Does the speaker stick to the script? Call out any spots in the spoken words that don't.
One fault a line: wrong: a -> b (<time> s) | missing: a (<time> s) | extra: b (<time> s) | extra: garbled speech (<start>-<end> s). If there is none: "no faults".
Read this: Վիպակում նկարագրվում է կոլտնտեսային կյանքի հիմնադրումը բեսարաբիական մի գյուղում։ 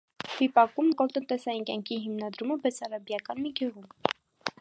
missing: նկարագրվում (0.9 s)